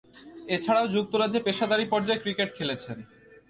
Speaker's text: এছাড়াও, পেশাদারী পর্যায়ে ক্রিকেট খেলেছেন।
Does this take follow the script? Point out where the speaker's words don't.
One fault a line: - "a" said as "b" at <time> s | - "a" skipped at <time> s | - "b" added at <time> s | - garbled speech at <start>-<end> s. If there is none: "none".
- "যুক্তরাজ্যে" added at 0.9 s